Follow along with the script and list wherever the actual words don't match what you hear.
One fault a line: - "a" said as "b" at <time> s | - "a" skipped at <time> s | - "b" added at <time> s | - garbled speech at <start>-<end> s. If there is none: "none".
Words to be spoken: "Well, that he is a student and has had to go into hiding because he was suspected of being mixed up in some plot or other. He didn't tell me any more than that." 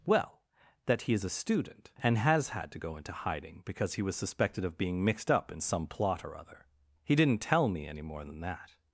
none